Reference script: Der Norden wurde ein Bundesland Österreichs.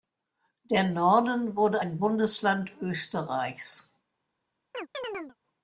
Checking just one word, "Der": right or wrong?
right